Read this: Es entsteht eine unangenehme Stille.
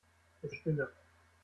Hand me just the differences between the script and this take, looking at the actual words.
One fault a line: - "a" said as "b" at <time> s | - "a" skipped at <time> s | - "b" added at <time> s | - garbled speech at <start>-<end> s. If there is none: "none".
- "entsteht eine unangenehme" skipped at 0.6 s